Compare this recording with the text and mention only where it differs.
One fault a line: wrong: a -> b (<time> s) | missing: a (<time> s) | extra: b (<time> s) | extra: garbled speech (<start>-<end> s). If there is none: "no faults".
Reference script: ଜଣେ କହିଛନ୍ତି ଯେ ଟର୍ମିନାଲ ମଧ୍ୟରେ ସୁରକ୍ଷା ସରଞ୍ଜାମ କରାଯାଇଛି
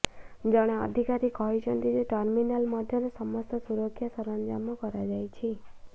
extra: ଅଧିକାରୀ (0.8 s)
extra: ସମସ୍ତ (3.2 s)